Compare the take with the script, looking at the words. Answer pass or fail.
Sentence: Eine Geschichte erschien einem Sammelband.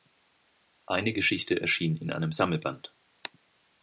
fail